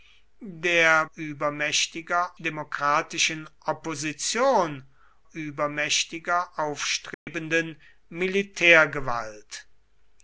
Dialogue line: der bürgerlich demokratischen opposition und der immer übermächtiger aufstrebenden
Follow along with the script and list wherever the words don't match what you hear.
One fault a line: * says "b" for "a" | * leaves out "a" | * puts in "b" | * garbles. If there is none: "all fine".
* says "übermächtiger" for "bürgerlich"
* leaves out "und der immer"